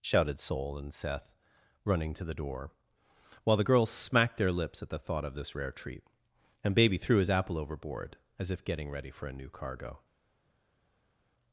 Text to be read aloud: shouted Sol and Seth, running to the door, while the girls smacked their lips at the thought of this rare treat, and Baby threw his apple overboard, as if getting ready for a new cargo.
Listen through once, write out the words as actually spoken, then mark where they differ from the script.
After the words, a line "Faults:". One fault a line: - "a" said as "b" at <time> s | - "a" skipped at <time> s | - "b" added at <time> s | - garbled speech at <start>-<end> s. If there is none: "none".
shouted Sol and Seth, running to the door, while the girls smacked their lips at the thought of this rare treat, and Baby threw his apple overboard, as if getting ready for a new cargo.
Faults:
none